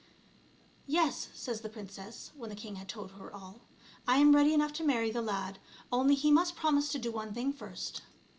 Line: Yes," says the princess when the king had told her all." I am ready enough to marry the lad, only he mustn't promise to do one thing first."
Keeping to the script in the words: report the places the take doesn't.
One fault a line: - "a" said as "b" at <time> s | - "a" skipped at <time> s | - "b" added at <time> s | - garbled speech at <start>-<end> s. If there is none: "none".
- "mustn't" said as "must" at 6.3 s